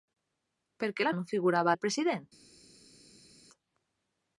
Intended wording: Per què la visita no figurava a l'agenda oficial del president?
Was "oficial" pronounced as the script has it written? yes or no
no